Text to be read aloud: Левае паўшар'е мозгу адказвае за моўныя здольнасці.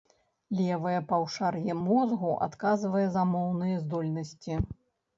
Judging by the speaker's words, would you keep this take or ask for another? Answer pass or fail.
pass